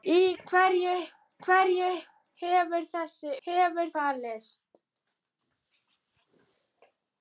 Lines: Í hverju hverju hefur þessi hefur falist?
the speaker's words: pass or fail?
pass